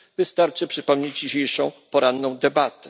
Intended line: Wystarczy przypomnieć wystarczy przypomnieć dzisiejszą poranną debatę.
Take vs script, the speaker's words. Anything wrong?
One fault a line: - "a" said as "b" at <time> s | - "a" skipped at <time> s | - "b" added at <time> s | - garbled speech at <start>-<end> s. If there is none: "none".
- "wystarczy przypomnieć" skipped at 1.2 s